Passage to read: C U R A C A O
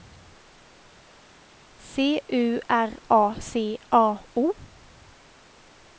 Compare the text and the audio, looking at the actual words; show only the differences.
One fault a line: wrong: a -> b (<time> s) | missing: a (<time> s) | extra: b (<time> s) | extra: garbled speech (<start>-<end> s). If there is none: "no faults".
no faults